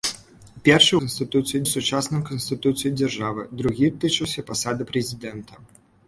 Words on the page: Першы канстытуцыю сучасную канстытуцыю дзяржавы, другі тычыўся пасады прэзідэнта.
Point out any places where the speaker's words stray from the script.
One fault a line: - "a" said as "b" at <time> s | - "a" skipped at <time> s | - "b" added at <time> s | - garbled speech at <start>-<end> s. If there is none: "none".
none